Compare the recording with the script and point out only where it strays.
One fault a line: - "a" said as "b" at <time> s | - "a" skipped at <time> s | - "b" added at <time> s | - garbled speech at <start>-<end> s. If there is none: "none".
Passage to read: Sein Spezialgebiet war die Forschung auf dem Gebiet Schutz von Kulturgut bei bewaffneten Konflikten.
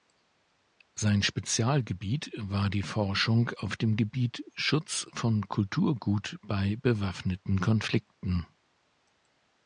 none